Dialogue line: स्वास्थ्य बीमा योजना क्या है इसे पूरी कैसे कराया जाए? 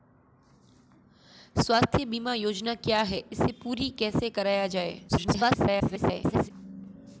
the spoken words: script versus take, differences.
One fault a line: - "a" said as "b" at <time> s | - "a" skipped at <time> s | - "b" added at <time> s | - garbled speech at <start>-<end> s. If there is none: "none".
- garbled speech at 5.1-6.5 s